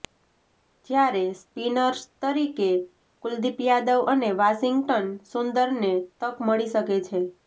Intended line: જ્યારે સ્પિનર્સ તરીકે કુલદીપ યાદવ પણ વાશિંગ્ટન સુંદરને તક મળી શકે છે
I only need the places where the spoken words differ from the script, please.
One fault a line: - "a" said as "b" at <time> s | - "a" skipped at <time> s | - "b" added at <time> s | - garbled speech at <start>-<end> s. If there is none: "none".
- "પણ" said as "અને" at 4.1 s